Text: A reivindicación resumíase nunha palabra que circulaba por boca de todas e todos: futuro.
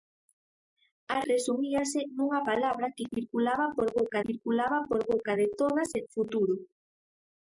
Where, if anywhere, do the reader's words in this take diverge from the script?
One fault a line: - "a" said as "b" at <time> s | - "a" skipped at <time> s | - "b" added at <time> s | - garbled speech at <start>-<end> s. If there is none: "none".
- "reivindicación" skipped at 1.2 s
- "circulaba por boca" added at 4.3 s
- "todos" skipped at 6.0 s